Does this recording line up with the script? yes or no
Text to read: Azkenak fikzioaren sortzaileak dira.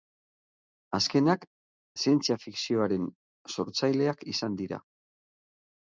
no